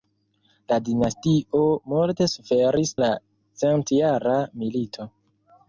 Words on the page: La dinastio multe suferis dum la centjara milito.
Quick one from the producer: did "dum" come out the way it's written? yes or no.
no